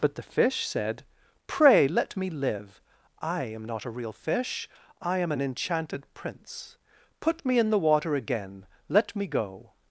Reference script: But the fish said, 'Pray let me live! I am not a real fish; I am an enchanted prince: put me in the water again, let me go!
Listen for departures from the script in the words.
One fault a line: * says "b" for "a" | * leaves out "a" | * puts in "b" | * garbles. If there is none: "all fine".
all fine